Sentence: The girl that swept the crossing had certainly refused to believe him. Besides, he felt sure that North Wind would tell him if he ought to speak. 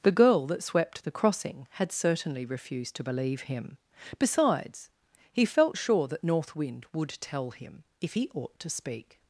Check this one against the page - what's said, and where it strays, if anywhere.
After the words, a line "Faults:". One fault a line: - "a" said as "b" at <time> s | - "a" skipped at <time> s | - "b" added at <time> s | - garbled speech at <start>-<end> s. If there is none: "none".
The girl that swept the crossing had certainly refused to believe him. Besides, he felt sure that North Wind would tell him if he ought to speak.
Faults:
none